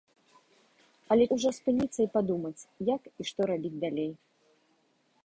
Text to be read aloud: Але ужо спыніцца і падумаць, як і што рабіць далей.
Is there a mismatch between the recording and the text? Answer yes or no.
no